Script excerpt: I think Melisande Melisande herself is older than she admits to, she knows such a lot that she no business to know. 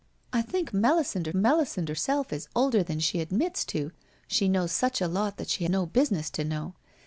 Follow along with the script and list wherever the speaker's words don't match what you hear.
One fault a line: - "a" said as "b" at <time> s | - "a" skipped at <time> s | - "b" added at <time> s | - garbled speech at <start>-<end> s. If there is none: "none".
none